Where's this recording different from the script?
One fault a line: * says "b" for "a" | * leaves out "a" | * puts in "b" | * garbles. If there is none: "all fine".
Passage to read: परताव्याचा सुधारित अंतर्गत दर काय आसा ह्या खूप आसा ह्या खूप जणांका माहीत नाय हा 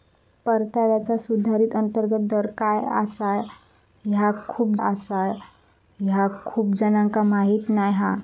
all fine